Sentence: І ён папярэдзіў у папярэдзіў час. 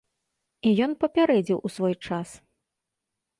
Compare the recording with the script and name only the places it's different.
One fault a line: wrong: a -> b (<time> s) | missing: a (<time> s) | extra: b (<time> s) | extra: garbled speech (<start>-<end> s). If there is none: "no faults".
wrong: папярэдзіў -> свой (1.7 s)